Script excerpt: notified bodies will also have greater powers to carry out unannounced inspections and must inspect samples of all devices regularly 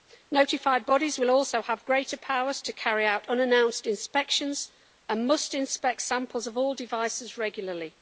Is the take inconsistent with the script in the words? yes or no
no